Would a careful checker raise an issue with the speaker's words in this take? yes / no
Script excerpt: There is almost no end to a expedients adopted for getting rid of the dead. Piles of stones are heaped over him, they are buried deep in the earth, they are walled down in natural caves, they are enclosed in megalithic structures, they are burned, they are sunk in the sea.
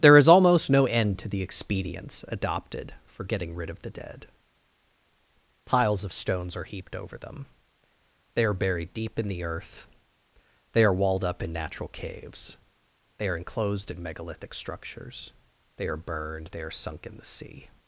yes